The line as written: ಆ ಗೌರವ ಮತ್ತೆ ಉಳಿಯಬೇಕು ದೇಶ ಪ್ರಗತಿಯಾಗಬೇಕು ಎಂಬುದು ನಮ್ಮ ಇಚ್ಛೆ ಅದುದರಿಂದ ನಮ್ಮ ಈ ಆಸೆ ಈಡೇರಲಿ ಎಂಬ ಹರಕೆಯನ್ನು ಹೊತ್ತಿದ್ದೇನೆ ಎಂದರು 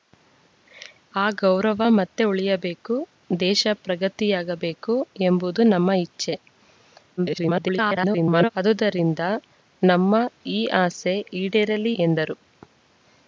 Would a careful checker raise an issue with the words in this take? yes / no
yes